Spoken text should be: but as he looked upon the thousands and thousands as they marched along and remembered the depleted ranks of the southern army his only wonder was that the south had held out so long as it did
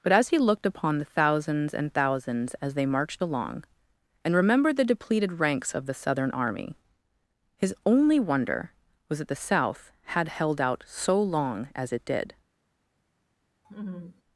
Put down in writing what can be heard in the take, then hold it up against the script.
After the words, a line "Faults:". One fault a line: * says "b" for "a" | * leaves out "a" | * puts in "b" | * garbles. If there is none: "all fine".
but as he looked upon the thousands and thousands as they marched along and remembered the depleted ranks of the southern army his only wonder was that the south had held out so long as it did
Faults:
all fine